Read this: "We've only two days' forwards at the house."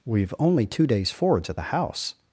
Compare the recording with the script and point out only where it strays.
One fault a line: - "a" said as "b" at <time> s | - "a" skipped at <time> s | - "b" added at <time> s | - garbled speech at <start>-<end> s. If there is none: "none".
none